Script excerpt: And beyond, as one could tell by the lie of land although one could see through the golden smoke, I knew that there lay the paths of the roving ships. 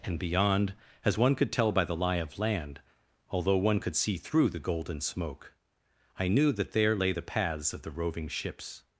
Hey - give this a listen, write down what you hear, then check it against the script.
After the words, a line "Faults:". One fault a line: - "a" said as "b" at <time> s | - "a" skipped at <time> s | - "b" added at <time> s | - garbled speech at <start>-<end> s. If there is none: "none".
And beyond, as one could tell by the lie of land although one could see through the golden smoke, I knew that there lay the paths of the roving ships.
Faults:
none